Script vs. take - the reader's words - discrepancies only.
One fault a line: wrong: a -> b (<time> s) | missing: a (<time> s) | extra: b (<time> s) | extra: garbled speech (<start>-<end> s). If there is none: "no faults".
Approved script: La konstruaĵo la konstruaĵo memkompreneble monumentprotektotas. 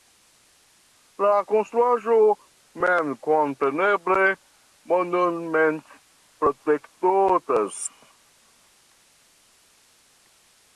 missing: la konstruaĵo (2.2 s)